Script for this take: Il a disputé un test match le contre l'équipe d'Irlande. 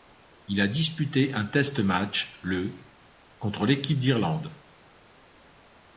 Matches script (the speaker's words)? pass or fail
pass